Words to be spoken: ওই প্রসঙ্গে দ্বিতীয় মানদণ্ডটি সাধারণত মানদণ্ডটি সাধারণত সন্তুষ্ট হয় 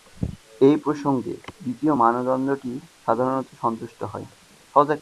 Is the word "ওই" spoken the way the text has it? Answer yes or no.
no